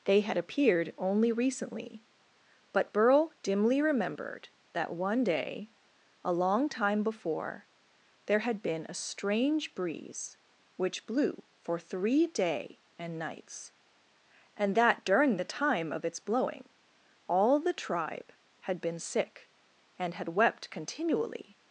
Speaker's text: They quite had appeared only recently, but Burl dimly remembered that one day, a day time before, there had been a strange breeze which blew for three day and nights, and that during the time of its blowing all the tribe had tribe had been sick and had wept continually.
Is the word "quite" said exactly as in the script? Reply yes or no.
no